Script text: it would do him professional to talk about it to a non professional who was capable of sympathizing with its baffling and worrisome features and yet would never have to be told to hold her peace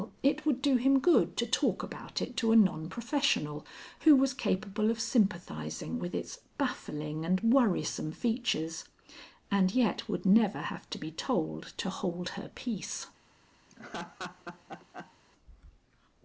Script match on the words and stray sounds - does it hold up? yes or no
no